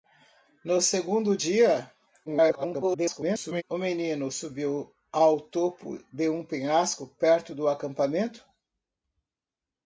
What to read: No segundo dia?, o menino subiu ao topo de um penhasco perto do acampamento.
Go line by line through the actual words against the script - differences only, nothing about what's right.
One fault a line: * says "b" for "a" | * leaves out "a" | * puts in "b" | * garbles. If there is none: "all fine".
* garbles